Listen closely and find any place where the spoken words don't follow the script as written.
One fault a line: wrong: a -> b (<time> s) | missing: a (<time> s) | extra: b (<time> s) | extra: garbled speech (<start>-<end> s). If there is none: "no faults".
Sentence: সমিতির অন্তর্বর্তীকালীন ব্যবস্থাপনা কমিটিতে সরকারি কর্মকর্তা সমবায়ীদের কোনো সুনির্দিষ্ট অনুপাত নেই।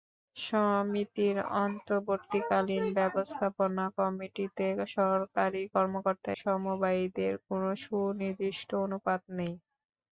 no faults